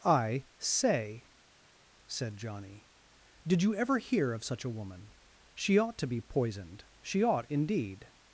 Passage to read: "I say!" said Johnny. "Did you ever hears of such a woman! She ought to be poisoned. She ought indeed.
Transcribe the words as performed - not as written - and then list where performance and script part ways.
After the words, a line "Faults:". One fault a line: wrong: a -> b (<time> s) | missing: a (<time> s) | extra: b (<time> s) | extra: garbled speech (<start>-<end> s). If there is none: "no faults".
"I say!" said Johnny. "Did you ever hear of such a woman! She ought to be poisoned. She ought indeed.
Faults:
wrong: hears -> hear (4.0 s)